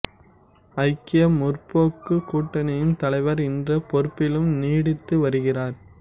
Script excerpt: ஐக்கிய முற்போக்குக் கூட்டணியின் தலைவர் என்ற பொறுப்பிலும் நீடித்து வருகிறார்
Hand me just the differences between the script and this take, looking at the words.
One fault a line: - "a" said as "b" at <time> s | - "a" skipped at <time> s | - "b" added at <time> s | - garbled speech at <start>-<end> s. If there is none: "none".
none